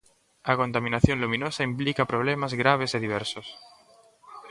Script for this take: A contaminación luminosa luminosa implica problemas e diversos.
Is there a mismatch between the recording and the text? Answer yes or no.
yes